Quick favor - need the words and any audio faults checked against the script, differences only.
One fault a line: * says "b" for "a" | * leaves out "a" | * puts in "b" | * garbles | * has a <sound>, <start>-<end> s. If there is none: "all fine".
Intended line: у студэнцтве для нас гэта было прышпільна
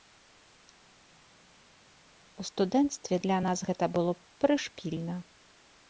all fine